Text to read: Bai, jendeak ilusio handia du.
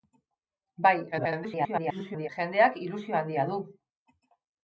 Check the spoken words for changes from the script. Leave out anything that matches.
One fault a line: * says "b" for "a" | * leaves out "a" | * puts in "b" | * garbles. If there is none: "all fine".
* garbles